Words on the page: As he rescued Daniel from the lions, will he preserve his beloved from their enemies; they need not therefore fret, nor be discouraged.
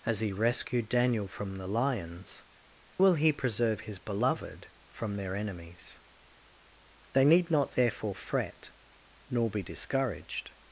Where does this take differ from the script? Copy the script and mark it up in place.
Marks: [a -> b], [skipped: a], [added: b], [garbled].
As he rescued Daniel from the lions, will he preserve his beloved from their enemies; they need not therefore fret, nor be discouraged.